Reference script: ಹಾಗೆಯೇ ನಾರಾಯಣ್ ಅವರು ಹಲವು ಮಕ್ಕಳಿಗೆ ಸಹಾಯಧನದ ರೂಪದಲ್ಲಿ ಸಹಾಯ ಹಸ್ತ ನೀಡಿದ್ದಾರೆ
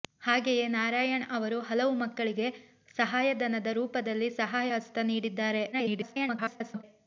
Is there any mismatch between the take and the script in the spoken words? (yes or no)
yes